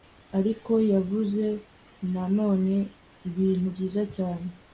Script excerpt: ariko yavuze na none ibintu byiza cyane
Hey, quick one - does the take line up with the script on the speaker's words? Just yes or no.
yes